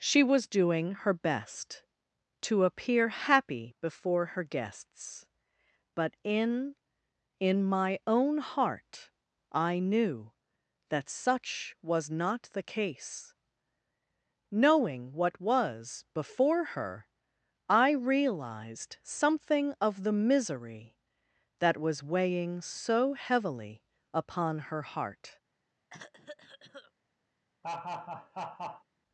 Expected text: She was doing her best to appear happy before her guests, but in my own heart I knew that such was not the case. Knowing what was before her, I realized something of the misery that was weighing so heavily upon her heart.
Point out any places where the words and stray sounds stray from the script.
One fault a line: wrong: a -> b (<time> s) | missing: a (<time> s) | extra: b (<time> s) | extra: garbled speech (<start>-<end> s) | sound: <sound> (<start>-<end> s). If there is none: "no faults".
extra: in (7.4 s)
sound: cough (25.9-26.9 s)
sound: laugh (27.6-28.8 s)